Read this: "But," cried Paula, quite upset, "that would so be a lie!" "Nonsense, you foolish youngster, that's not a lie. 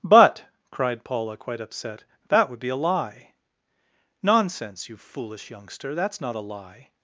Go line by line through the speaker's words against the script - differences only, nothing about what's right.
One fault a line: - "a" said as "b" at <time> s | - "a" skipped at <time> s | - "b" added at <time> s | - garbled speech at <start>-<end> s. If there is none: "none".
- "so" skipped at 2.6 s